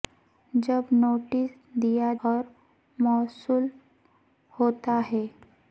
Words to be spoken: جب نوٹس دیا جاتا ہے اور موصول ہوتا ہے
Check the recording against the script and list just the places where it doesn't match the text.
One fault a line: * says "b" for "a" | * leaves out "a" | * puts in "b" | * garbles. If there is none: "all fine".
* leaves out "جاتا ہے"